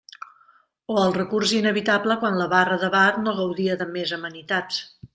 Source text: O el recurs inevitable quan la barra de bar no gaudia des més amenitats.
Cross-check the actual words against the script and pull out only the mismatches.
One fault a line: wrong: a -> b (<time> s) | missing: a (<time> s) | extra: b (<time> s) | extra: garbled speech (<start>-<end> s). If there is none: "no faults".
wrong: des -> de (3.8 s)